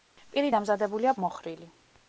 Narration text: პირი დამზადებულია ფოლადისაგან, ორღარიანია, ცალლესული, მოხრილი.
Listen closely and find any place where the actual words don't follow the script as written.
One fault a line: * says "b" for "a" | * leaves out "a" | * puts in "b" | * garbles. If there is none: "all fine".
* leaves out "ფოლადისაგან ორღარიანია ცალლესული"